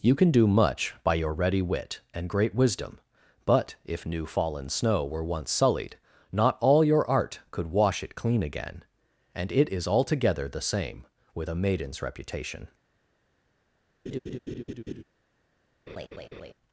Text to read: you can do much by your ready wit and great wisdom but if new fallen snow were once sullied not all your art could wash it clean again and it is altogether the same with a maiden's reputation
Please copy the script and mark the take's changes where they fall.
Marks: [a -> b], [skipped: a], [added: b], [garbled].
you can do much by your ready wit and great wisdom but if new fallen snow were once sullied not all your art could wash it clean again and it is altogether the same with a maiden's reputation